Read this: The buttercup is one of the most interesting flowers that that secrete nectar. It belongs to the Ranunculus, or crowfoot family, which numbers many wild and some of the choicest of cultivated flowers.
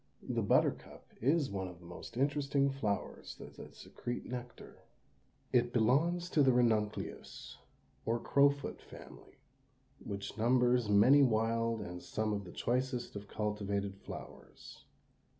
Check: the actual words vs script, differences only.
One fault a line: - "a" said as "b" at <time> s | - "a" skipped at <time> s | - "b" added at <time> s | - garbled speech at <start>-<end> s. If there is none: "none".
none